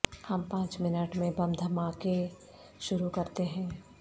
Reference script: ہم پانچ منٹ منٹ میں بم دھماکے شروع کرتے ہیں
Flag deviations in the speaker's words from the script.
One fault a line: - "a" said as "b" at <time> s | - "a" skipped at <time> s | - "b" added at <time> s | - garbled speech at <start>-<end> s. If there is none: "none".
- "منٹ" skipped at 1.1 s